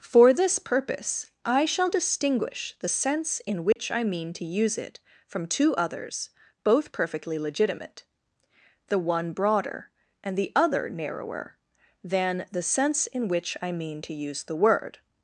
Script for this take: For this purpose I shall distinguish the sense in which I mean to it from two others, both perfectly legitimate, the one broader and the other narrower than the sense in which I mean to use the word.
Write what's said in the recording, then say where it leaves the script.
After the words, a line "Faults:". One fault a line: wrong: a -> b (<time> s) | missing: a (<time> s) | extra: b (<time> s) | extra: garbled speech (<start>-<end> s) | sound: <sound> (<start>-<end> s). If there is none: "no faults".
For this purpose I shall distinguish the sense in which I mean to use it from two others, both perfectly legitimate, the one broader and the other narrower than the sense in which I mean to use the word.
Faults:
sound: dropout (3.7-3.8 s)
extra: use (4.5 s)